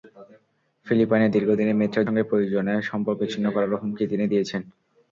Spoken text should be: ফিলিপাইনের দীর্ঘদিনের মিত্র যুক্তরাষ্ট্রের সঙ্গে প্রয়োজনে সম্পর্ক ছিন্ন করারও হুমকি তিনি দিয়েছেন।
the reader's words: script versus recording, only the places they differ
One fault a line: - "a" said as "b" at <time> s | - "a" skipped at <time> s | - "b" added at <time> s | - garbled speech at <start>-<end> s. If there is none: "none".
- "যুক্তরাষ্ট্রের" skipped at 2.0 s